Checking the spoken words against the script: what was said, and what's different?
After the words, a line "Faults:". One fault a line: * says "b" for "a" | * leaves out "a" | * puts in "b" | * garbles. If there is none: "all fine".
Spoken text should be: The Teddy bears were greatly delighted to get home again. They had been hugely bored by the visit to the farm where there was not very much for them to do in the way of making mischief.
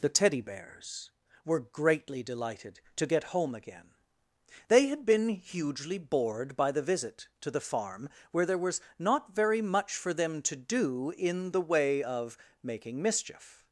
The Teddy bears were greatly delighted to get home again. They had been hugely bored by the visit to the farm where there was not very much for them to do in the way of making mischief.
Faults:
all fine